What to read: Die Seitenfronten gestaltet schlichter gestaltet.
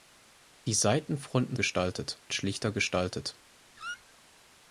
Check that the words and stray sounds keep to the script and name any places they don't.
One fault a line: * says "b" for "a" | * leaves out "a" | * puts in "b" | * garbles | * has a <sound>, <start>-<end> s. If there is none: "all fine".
* has a squeak, 3.8-4.1 s